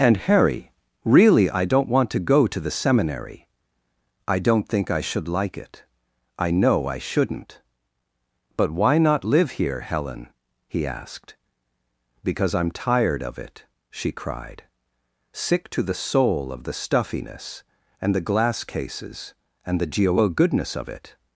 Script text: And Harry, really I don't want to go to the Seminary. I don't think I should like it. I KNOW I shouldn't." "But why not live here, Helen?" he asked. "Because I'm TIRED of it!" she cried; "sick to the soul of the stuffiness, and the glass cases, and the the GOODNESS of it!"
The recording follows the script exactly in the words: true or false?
false